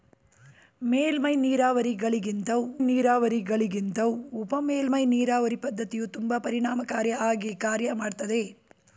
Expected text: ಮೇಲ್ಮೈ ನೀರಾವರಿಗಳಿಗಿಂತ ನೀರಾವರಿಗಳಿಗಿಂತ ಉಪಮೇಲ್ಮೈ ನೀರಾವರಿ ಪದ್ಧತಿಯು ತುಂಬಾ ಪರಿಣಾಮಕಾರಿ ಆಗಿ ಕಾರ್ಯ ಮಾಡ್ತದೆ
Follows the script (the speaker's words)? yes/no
yes